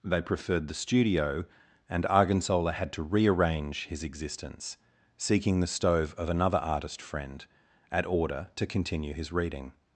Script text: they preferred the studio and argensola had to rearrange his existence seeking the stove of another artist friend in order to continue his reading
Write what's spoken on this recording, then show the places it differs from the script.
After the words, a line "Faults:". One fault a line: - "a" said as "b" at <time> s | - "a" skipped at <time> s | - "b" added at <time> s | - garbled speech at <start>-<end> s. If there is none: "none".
they preferred the studio and argensola had to rearrange his existence seeking the stove of another artist friend at order to continue his reading
Faults:
- "in" said as "at" at 7.9 s